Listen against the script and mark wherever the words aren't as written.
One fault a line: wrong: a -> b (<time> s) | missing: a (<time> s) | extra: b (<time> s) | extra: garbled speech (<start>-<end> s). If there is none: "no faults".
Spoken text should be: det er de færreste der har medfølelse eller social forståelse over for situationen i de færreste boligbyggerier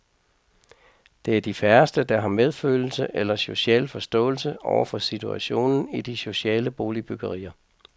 wrong: færreste -> sociale (6.2 s)